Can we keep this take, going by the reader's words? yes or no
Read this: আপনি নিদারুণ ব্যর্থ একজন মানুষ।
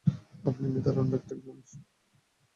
yes